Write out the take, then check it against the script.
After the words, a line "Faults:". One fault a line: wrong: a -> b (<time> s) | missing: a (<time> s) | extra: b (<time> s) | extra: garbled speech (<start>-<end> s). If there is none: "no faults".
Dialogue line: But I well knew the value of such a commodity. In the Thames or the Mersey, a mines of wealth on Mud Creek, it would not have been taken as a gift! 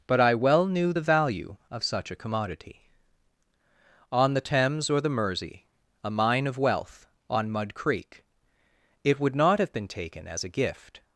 But I well knew the value of such a commodity. On the Thames or the Mersey, a mine of wealth on Mud Creek, it would not have been taken as a gift!
Faults:
wrong: In -> On (4.1 s)
wrong: mines -> mine (6.1 s)